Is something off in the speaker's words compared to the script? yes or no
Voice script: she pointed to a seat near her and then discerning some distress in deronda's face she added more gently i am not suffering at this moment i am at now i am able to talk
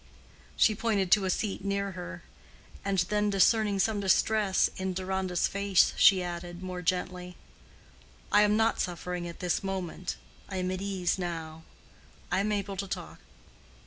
yes